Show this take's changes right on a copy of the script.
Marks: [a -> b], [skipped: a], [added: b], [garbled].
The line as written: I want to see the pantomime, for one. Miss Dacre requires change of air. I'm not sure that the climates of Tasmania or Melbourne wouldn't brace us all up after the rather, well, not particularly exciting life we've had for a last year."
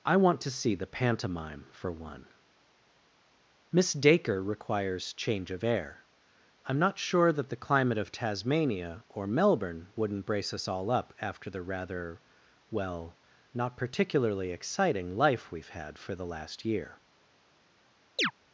I want to see the pantomime, for one. Miss Dacre requires change of air. I'm not sure that the [climates -> climate] of Tasmania or Melbourne wouldn't brace us all up after the rather, well, not particularly exciting life we've had for [a -> the] last year."